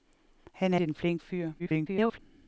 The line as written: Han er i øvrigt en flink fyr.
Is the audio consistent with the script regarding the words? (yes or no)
no